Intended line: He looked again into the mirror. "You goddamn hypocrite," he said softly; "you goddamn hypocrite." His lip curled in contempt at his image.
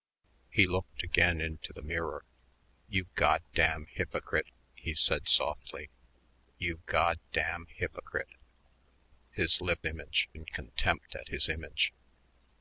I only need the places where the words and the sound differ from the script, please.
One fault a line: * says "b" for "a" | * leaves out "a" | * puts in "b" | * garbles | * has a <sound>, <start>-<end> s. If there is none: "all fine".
* says "image" for "curled"